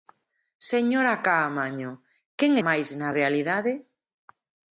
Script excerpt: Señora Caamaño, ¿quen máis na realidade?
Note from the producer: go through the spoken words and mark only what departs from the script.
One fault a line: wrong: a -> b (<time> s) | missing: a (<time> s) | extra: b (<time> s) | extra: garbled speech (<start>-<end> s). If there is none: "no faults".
no faults